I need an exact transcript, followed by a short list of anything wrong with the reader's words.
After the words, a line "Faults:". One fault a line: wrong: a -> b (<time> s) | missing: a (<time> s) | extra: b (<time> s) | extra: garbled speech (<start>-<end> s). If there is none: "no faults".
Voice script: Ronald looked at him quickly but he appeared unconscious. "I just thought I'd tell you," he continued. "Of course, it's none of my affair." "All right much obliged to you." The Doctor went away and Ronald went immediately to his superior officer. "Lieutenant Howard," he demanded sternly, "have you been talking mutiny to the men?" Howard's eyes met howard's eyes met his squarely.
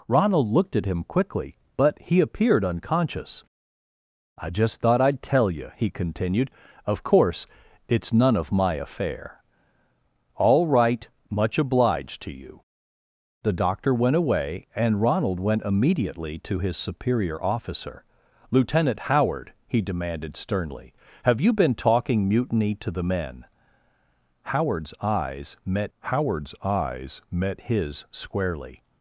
Ronald looked at him quickly but he appeared unconscious. "I just thought I'd tell you," he continued. "Of course, it's none of my affair." "All right much obliged to you." The Doctor went away and Ronald went immediately to his superior officer. "Lieutenant Howard," he demanded sternly, "have you been talking mutiny to the men?" Howard's eyes met howard's eyes met his squarely.
Faults:
no faults